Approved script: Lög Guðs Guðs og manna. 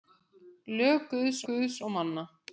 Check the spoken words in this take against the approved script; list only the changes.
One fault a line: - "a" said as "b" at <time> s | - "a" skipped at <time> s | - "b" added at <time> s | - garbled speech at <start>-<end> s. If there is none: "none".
none